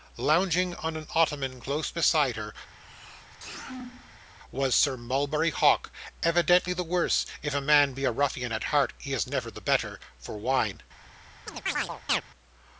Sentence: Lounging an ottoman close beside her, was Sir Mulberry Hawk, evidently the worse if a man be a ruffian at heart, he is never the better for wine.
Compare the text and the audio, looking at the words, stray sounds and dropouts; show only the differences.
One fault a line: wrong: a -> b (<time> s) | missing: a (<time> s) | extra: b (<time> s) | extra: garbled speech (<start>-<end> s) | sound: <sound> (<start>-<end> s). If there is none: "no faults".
extra: on (0.8 s)
sound: sneeze (2.7-4.3 s)
sound: chirp (11.5-12.2 s)